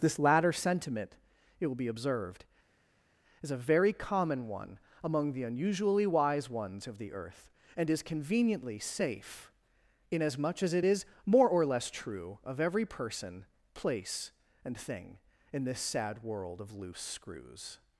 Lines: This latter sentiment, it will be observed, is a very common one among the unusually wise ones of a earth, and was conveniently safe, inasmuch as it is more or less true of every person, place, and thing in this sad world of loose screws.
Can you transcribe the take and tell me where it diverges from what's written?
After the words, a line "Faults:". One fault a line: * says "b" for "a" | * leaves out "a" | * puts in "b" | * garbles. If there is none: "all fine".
This latter sentiment, it will be observed, is a very common one among the unusually wise ones of the earth, and is conveniently safe, inasmuch as it is more or less true of every person, place, and thing in this sad world of loose screws.
Faults:
* says "the" for "a"
* says "is" for "was"